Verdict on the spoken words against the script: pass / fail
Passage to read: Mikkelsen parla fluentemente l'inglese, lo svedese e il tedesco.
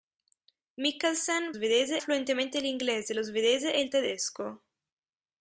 fail